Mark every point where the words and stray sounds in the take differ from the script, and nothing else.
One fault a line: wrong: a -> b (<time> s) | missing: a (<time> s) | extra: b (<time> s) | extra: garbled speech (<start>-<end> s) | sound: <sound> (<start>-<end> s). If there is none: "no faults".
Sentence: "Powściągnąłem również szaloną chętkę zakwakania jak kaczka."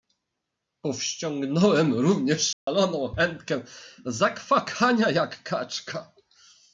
sound: dropout (2.5-2.7 s)